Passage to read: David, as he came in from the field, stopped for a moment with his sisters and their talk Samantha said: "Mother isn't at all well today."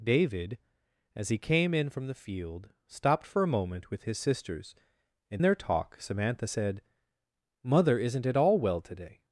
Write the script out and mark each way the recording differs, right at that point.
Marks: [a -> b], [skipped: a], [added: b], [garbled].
David, as he came in from the field, stopped for a moment with his sisters and their talk Samantha said: "Mother isn't at all well today."